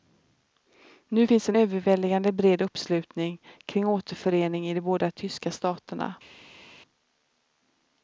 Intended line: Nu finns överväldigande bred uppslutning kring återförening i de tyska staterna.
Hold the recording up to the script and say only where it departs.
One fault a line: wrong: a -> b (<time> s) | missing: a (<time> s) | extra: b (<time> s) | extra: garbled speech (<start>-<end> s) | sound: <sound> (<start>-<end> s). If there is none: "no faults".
extra: en (1.5 s)
extra: båda (4.8 s)